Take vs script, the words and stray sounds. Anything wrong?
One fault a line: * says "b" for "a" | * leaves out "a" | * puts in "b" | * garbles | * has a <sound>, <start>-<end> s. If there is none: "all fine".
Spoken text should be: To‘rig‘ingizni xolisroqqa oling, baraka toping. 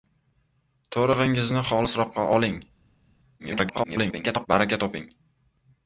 * garbles